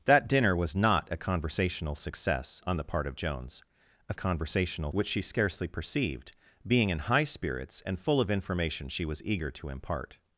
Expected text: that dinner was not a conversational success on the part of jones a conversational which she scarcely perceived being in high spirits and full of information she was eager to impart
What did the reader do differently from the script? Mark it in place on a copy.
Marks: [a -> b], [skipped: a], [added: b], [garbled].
that dinner was not a conversational success on the part of jones a conversational which she scarcely perceived being in high spirits and full of information she was eager to impart